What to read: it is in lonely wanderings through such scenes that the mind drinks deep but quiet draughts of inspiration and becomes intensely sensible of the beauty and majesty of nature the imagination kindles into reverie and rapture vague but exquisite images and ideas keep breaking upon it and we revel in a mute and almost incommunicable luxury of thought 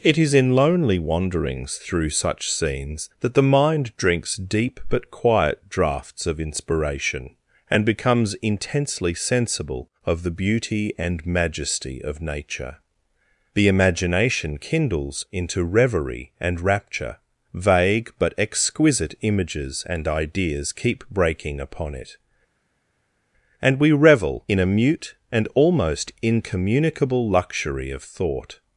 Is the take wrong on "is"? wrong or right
right